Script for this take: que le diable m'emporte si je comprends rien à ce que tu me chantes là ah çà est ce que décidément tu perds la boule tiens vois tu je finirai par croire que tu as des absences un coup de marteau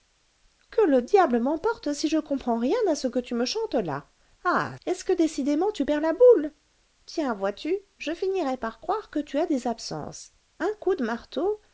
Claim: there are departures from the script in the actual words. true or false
true